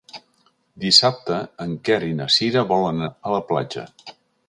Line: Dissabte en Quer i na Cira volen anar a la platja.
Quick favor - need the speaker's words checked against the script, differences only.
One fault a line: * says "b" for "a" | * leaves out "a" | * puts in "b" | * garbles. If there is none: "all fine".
* leaves out "anar"